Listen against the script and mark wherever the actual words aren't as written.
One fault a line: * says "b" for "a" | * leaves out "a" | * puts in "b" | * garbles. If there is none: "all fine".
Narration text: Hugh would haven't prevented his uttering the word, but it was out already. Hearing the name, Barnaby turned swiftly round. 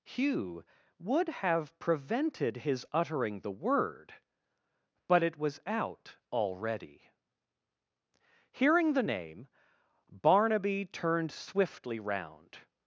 * says "have" for "haven't"